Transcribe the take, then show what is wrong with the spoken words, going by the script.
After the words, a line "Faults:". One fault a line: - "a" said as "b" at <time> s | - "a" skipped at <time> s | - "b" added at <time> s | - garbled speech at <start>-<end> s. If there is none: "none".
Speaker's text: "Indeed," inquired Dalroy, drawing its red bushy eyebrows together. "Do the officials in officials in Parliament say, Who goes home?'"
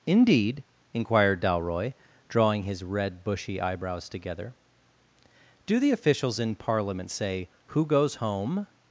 "Indeed," inquired Dalroy, drawing his red bushy eyebrows together. "Do the officials in Parliament say, Who goes home?'"
Faults:
- "its" said as "his" at 2.6 s
- "officials in" skipped at 6.5 s